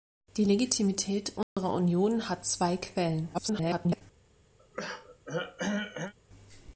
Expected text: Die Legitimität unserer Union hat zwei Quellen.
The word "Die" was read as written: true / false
true